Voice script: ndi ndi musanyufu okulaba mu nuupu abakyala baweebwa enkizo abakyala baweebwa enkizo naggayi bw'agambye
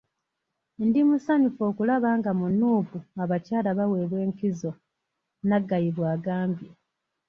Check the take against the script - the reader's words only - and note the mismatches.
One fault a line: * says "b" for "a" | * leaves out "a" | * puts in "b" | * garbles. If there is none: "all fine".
* leaves out "ndi"
* puts in "nga"
* leaves out "abakyala baweebwa enkizo"